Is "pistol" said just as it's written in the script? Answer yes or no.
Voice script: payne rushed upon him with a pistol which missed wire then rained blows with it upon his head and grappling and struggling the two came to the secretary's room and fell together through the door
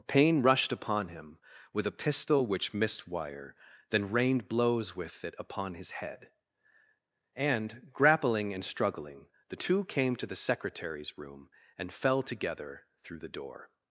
yes